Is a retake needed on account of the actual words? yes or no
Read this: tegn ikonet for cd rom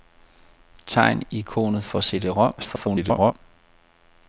yes